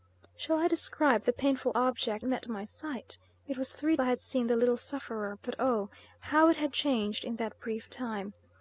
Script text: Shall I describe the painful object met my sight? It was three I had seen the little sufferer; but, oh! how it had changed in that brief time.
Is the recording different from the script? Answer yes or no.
no